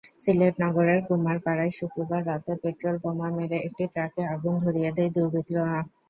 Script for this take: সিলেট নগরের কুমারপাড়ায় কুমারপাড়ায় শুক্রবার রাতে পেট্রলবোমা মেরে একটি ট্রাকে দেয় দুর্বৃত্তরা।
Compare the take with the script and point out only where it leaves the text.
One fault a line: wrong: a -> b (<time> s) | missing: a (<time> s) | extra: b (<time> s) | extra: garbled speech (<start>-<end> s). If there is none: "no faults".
missing: কুমারপাড়ায় (1.7 s)
extra: আগুন ধরিয়ে (4.3 s)